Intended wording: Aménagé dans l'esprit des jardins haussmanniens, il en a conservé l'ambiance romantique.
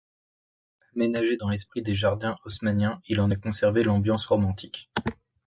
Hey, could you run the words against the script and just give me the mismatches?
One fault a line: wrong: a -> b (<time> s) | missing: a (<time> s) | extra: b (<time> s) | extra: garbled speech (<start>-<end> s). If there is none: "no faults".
no faults